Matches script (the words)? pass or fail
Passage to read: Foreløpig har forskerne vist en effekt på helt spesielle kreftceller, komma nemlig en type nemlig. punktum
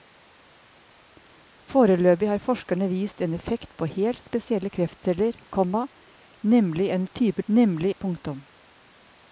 pass